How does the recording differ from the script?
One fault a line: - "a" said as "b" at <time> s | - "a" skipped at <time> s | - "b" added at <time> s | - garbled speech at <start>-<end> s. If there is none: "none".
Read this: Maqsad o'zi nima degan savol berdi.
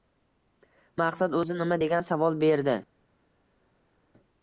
none